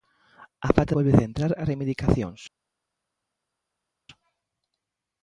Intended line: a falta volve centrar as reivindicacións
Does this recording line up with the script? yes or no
yes